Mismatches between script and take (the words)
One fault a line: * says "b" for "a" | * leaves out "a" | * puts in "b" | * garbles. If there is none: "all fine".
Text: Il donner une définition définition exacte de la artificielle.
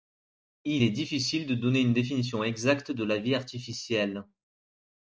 * puts in "est difficile de"
* leaves out "définition"
* puts in "vie"